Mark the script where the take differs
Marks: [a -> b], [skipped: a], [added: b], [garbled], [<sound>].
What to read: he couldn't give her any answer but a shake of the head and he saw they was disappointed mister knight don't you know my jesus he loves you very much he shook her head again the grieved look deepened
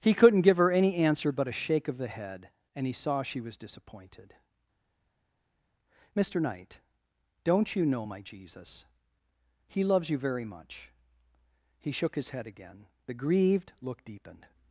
he couldn't give her any answer but a shake of the head and he saw [they -> she] was disappointed mister knight don't you know my jesus he loves you very much he shook [her -> his] head again the grieved look deepened